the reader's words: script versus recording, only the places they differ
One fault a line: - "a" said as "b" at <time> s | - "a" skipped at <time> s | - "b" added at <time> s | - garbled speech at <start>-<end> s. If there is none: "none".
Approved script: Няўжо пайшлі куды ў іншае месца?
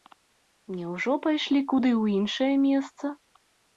none